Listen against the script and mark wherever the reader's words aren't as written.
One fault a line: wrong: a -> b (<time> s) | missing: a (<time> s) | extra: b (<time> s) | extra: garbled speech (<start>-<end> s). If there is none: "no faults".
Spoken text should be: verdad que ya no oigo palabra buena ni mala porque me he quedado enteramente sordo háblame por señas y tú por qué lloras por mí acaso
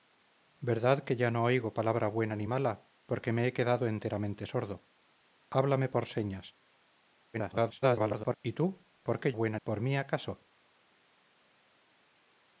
extra: garbled speech (7.3-8.3 s)
wrong: lloras -> buena (9.3 s)